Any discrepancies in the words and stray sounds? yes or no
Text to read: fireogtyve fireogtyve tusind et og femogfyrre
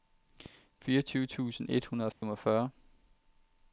yes